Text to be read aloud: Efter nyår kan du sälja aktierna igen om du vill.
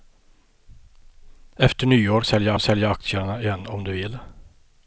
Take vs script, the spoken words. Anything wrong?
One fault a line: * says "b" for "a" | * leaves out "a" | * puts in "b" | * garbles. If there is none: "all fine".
* says "sälja" for "kan"